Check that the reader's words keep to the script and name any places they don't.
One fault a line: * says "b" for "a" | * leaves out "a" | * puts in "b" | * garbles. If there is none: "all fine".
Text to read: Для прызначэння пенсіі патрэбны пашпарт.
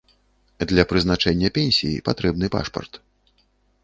all fine